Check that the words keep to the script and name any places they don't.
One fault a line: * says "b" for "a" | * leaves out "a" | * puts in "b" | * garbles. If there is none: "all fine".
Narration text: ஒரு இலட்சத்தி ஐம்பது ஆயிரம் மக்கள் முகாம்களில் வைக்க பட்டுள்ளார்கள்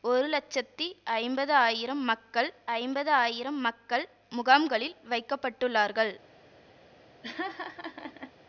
* puts in "ஐம்பது ஆயிரம் மக்கள்"